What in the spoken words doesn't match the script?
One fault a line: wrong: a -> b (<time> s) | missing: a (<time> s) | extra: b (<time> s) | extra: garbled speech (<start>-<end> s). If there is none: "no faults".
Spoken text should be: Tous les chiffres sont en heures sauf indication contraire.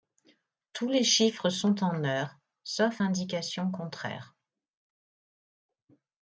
no faults